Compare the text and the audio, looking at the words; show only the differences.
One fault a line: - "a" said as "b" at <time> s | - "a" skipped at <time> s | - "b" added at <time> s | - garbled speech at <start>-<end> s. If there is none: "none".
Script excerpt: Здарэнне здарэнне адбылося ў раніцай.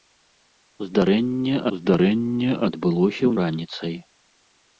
none